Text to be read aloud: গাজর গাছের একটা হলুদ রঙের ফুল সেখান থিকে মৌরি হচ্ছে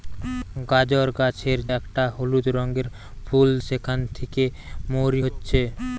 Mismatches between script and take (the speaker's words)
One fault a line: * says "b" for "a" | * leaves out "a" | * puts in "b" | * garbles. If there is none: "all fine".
all fine